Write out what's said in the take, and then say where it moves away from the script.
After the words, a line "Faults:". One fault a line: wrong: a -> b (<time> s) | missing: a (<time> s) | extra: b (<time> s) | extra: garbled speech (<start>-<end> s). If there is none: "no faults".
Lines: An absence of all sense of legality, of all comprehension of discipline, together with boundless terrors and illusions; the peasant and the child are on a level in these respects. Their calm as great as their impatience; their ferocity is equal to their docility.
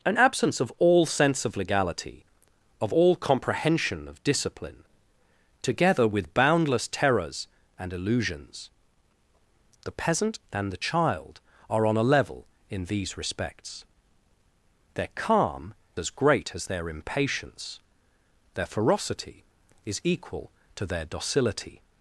An absence of all sense of legality, of all comprehension of discipline, together with boundless terrors and illusions; the peasant and the child are on a level in these respects. Their calm as great as their impatience; their ferocity is equal to their docility.
Faults:
no faults